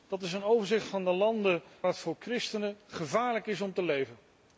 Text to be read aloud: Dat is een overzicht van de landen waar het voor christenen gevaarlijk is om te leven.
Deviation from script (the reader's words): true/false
true